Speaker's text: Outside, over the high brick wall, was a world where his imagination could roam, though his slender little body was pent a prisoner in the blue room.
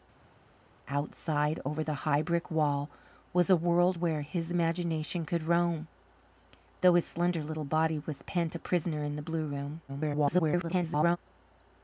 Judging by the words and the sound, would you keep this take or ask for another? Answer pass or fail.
fail